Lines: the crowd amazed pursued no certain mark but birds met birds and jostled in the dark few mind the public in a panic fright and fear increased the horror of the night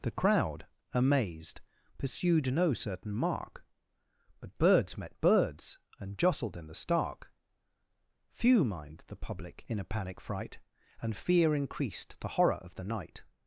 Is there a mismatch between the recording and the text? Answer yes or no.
yes